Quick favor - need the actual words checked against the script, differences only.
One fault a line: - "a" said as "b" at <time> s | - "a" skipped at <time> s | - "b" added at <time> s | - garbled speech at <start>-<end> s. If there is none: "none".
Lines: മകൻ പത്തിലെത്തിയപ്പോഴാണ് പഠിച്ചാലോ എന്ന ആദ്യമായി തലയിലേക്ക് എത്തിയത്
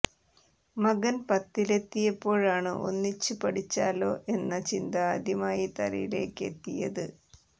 - "ഒന്നിച്ച്" added at 2.9 s
- "ചിന്ത" added at 4.7 s